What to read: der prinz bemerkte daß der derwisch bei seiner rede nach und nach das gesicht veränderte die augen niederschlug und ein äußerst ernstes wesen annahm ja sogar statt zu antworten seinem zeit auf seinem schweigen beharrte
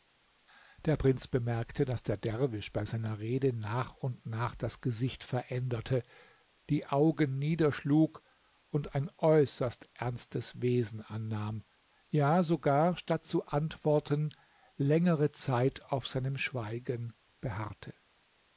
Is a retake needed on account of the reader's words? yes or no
yes